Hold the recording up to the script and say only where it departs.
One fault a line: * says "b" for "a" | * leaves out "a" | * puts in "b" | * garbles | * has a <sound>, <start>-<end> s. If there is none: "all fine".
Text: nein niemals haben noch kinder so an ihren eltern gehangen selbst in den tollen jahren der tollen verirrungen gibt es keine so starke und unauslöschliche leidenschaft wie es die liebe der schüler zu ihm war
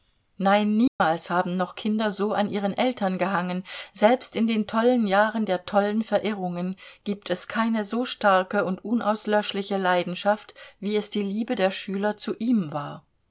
* has a dropout, 0.9-1.0 s